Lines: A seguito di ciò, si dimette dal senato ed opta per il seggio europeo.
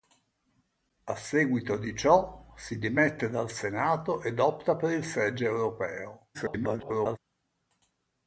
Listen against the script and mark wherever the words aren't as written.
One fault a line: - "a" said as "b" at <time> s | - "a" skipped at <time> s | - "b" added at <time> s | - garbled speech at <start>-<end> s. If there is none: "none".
- garbled speech at 6.3-7.2 s